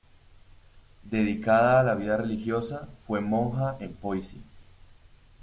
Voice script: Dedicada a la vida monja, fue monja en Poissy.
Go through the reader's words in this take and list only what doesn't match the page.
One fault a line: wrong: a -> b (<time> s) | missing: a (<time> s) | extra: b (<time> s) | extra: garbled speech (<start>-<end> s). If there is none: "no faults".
wrong: monja -> religiosa (2.2 s)